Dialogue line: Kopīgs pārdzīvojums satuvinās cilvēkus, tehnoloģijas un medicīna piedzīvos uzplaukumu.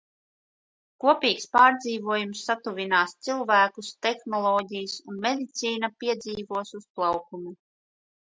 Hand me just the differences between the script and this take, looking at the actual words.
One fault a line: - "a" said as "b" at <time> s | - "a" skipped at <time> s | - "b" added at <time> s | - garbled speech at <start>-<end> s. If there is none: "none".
none